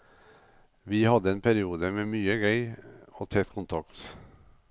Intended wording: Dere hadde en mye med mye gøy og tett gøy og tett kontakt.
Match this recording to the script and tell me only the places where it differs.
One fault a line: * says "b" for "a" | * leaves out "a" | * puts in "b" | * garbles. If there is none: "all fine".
* says "Vi" for "Dere"
* says "periode" for "mye"
* leaves out "gøy og tett"